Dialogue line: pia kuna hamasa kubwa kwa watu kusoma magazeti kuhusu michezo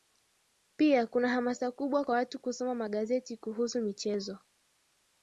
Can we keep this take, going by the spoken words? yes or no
yes